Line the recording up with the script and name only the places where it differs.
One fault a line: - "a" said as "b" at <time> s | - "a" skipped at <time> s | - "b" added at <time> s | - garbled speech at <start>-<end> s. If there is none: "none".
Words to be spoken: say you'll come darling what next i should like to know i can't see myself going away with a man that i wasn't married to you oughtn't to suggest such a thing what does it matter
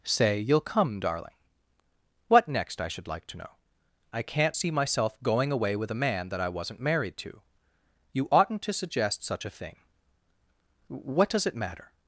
none